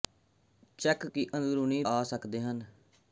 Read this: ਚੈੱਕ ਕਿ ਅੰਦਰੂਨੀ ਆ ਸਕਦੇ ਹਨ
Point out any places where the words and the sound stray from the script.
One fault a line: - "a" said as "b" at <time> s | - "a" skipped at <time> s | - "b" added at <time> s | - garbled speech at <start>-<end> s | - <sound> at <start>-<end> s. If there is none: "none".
none